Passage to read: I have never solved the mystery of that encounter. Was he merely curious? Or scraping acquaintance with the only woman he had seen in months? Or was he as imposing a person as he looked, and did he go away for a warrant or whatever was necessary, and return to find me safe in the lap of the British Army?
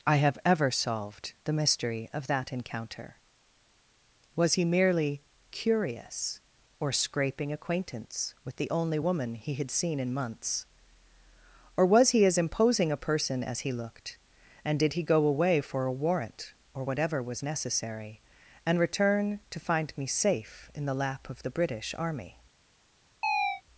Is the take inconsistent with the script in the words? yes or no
yes